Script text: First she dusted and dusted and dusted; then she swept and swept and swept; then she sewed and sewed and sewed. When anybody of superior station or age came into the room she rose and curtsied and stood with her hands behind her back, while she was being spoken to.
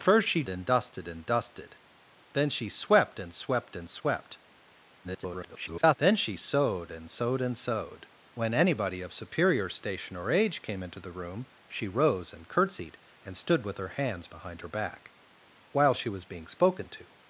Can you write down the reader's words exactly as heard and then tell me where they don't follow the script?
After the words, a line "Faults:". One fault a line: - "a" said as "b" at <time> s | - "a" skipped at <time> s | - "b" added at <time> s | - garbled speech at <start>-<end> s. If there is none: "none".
First she and dusted and dusted; then she swept and swept and swept; [garbled] then she sewed and sewed and sewed. When anybody of superior station or age came into the room she rose and curtsied and stood with her hands behind her back, while she was being spoken to.
Faults:
- "dusted" skipped at 0.4 s
- garbled speech at 5.0-6.0 s